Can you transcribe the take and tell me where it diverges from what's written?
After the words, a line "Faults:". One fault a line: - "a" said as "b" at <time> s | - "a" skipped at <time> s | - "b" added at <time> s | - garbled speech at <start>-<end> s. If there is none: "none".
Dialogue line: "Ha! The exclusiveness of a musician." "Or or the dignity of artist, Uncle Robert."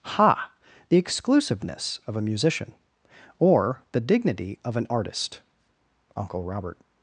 "Ha! The exclusiveness of a musician." "Or the dignity of an artist, Uncle Robert."
Faults:
- "or" skipped at 3.8 s
- "an" added at 4.8 s